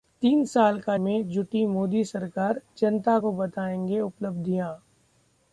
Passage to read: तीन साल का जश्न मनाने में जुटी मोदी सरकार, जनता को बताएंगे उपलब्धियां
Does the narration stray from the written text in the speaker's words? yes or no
yes